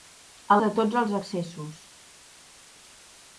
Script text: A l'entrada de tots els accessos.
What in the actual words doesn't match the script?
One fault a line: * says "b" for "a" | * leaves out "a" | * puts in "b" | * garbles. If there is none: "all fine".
* leaves out "l'entrada"